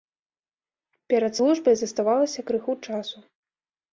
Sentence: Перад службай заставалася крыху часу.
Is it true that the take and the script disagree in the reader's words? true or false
false